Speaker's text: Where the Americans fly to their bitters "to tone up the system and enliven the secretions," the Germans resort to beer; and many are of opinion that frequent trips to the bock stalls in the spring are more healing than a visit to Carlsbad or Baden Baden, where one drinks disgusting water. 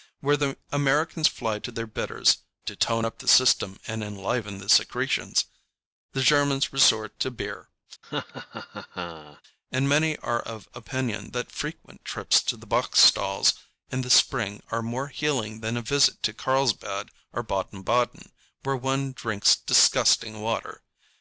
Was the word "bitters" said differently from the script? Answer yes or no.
no